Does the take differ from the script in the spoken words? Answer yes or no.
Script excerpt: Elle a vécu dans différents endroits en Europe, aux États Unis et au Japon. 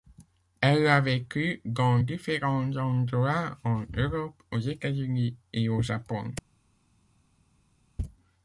no